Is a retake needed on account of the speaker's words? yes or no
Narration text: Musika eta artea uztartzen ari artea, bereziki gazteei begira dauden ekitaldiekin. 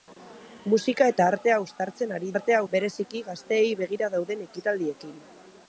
no